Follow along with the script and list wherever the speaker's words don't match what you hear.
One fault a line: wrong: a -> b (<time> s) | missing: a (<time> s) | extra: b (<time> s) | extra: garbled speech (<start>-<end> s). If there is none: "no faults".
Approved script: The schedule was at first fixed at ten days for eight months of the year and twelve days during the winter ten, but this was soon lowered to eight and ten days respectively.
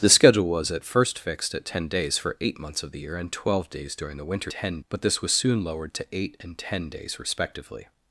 no faults